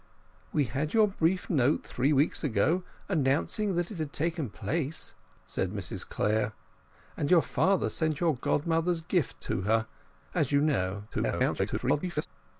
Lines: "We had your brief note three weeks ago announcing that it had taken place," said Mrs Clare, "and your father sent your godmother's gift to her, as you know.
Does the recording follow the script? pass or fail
fail